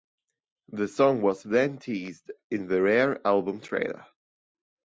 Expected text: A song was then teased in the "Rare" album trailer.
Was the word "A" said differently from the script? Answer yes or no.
yes